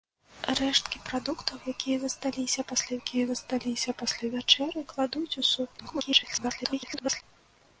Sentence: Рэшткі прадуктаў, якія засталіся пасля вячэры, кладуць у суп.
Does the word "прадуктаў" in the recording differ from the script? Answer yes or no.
no